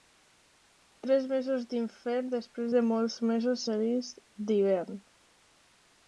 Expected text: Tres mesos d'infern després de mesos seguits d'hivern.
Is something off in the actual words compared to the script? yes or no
yes